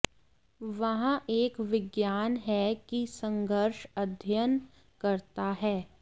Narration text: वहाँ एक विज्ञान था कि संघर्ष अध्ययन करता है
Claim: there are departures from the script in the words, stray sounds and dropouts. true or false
true